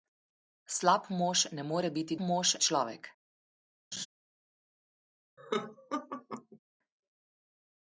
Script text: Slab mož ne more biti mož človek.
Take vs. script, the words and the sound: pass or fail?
fail